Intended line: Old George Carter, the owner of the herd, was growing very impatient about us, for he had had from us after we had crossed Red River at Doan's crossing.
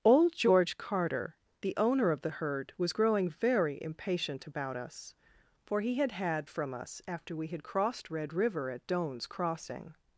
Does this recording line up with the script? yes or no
yes